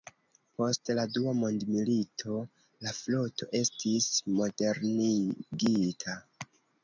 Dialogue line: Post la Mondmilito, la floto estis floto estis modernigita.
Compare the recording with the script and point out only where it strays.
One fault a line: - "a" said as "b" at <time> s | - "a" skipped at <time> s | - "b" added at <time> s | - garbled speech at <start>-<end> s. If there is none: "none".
- "Dua" added at 1.2 s
- "floto estis" skipped at 4.1 s